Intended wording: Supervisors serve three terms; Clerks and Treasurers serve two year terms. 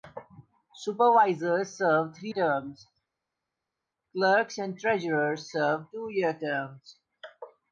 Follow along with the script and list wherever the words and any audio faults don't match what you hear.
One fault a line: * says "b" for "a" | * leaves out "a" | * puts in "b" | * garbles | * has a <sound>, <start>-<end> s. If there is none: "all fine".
all fine